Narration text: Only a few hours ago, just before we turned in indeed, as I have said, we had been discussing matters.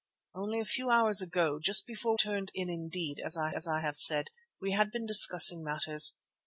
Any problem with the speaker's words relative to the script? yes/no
yes